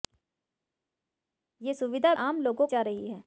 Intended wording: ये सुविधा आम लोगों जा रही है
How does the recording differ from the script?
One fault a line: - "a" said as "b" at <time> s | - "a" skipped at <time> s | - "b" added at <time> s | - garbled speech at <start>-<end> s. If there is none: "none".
none